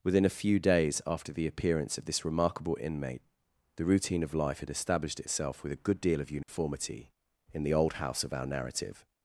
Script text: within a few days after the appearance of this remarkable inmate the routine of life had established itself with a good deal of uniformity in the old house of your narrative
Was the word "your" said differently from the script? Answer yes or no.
yes